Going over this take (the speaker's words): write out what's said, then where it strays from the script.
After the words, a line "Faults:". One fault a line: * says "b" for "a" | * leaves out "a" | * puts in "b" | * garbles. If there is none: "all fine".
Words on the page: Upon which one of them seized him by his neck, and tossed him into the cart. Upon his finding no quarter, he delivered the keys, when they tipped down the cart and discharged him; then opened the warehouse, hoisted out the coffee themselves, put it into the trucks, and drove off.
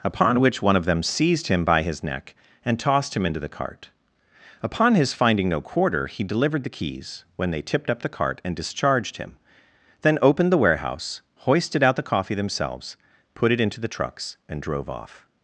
Upon which one of them seized him by his neck, and tossed him into the cart. Upon his finding no quarter, he delivered the keys, when they tipped up the cart and discharged him; then opened the warehouse, hoisted out the coffee themselves, put it into the trucks, and drove off.
Faults:
* says "up" for "down"